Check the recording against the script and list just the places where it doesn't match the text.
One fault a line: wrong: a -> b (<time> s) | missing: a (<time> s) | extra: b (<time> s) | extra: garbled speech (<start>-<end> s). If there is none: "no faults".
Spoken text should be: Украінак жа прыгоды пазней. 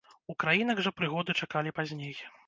extra: чакалі (1.4 s)